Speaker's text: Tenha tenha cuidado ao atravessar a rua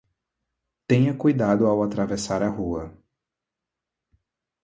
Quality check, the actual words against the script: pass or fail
fail